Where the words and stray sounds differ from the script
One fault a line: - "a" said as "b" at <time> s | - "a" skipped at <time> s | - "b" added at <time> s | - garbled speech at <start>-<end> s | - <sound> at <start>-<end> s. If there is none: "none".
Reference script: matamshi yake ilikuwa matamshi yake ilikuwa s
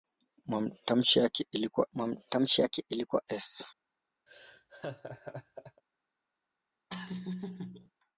- laugh at 4.3-5.8 s
- laugh at 6.9-7.9 s